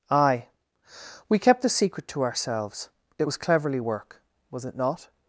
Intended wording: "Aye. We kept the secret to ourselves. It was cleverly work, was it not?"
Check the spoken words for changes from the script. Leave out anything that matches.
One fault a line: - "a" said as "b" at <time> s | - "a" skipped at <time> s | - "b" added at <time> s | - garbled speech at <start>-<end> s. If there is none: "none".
none